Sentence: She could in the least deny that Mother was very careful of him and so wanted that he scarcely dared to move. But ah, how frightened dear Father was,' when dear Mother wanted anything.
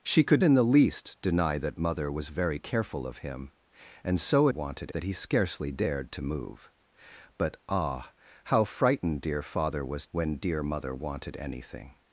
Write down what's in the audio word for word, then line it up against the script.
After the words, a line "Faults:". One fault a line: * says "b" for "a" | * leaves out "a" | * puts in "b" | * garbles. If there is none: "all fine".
She could in the least deny that Mother was very careful of him and so wanted that he scarcely dared to move. But ah, how frightened dear Father was,' when dear Mother wanted anything.
Faults:
all fine